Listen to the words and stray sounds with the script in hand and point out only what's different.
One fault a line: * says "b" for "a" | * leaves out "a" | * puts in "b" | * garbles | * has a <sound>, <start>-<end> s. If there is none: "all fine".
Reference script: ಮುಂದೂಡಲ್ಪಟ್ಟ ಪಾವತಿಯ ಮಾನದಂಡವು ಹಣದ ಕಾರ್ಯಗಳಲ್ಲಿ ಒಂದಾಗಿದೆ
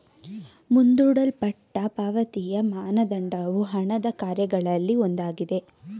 all fine